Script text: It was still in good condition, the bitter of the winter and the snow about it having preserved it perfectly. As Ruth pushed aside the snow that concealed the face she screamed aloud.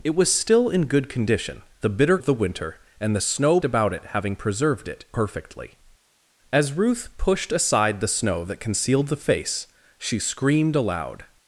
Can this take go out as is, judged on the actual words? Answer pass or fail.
pass